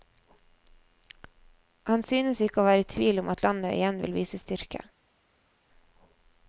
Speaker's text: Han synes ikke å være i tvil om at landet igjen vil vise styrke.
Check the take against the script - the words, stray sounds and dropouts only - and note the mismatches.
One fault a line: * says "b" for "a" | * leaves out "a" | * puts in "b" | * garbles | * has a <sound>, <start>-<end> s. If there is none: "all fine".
all fine